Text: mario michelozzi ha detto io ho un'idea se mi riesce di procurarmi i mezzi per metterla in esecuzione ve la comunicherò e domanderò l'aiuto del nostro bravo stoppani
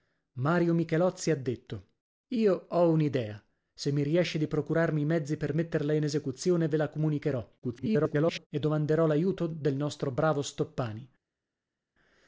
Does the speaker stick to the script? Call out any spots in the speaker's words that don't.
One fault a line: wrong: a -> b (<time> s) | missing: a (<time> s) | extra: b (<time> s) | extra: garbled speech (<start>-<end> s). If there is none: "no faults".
extra: garbled speech (7.6-8.5 s)